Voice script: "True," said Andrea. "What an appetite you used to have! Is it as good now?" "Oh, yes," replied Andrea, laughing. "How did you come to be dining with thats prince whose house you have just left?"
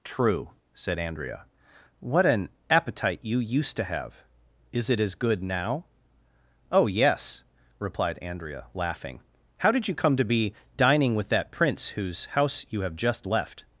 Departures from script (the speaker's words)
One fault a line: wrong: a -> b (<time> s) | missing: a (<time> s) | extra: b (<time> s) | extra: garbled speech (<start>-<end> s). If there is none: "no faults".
wrong: thats -> that (11.3 s)